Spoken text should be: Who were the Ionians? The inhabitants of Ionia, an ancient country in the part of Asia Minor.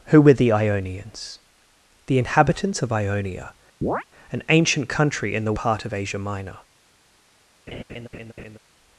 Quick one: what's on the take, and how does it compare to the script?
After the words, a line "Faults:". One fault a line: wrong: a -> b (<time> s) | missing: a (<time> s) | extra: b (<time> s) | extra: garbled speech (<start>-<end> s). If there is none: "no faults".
Who were the Ionians? The inhabitants of Ionia, an ancient country in the part of Asia Minor.
Faults:
no faults